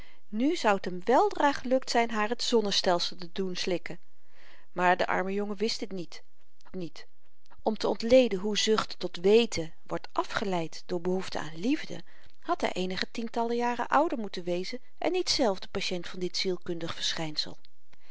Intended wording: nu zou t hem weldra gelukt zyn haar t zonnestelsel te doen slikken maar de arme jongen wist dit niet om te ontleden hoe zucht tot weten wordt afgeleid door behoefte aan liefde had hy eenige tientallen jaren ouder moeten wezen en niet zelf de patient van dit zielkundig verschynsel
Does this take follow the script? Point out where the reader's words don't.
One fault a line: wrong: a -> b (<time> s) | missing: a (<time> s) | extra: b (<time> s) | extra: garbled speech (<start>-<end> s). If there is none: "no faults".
extra: niet (6.7 s)